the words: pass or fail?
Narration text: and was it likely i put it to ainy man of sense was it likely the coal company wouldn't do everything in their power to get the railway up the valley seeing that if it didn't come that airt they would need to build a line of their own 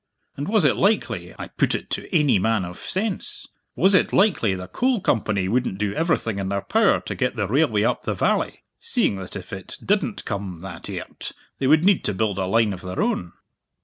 pass